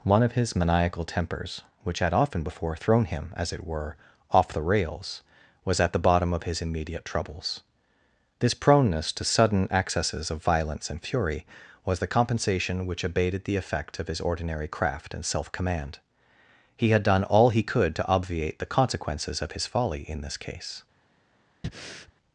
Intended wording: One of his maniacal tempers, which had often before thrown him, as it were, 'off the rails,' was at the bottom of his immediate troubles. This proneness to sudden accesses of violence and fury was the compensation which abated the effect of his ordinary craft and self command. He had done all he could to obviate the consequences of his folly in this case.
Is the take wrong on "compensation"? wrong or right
right